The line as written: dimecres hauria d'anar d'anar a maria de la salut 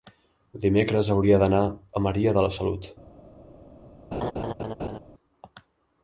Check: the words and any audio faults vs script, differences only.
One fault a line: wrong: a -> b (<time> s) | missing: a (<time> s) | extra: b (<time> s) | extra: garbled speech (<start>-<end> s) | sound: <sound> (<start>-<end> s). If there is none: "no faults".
missing: d'anar (1.6 s)
sound: laugh (4.1-5.0 s)